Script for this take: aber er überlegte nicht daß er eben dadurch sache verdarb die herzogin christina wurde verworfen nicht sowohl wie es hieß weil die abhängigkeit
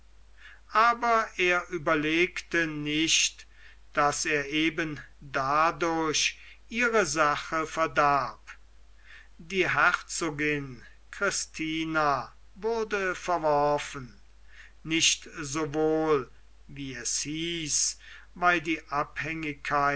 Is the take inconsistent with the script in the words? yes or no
yes